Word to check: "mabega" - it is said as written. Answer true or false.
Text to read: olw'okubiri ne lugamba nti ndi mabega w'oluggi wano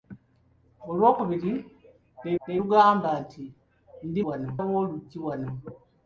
false